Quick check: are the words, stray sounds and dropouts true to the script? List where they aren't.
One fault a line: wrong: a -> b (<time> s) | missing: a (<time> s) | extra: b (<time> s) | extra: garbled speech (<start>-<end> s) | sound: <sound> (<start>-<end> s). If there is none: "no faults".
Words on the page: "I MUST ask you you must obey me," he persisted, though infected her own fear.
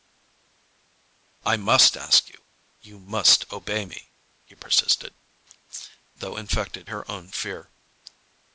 no faults